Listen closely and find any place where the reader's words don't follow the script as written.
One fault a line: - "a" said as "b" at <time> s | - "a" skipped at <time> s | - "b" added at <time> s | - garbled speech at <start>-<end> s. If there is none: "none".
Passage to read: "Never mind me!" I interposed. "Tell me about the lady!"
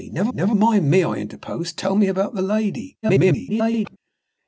- "never" added at 0.3 s
- garbled speech at 3.0-4.0 s